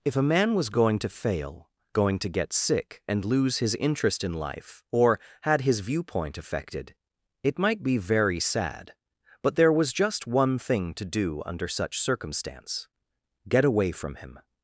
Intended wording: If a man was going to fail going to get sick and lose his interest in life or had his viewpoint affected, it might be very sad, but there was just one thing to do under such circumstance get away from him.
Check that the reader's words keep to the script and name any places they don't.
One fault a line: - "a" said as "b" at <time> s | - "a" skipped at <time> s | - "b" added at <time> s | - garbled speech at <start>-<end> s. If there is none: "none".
none